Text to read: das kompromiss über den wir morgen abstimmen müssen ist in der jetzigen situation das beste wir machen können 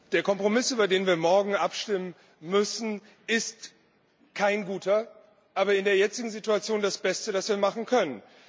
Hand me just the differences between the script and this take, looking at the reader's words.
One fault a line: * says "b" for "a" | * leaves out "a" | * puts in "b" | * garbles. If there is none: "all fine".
* says "der" for "das"
* puts in "kein guter aber"
* puts in "das"